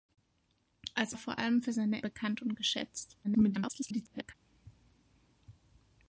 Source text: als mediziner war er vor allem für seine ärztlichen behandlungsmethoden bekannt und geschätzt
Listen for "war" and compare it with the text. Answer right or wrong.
wrong